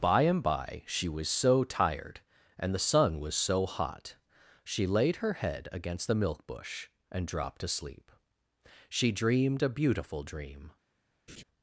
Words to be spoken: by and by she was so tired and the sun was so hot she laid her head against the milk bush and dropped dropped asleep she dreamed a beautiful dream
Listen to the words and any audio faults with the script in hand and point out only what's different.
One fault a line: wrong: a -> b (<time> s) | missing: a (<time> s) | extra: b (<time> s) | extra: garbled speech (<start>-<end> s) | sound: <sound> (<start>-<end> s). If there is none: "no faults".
missing: dropped (7.6 s)
sound: laugh (11.3-11.4 s)